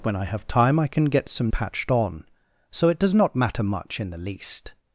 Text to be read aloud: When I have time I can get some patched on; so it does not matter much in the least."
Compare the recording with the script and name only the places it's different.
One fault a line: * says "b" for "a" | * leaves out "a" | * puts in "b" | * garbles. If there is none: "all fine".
all fine